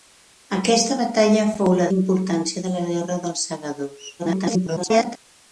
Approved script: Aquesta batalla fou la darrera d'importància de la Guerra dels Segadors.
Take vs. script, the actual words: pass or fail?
fail